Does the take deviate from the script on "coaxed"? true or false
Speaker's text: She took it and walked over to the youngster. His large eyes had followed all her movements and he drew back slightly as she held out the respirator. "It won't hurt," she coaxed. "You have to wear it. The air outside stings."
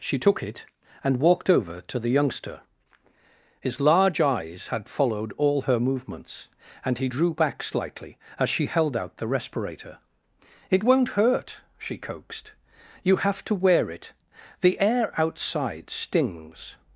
false